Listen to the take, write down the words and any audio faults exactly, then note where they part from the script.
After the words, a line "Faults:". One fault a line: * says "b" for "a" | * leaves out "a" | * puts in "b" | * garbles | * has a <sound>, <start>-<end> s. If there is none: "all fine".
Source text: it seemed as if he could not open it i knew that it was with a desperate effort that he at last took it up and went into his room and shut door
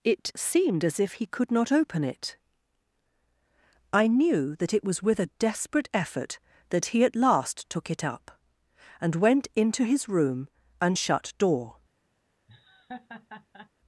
it seemed as if he could not open it i knew that it was with a desperate effort that he at last took it up and went into his room and shut door
Faults:
* has a laugh, 12.5-13.7 s